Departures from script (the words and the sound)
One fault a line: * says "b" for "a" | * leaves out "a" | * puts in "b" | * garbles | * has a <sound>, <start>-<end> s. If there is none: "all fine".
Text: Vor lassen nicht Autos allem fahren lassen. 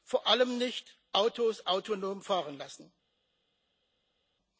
* says "allem" for "lassen"
* says "autonom" for "allem"